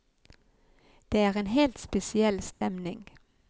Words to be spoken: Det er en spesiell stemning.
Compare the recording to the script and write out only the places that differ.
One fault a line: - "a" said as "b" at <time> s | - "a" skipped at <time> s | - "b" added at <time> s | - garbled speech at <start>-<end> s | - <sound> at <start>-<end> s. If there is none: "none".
- "helt" added at 1.5 s
- dropout at 2.5-2.6 s